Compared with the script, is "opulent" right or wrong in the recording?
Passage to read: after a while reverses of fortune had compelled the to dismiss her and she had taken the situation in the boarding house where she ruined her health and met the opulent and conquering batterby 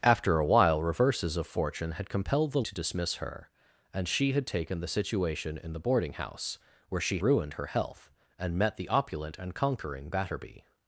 right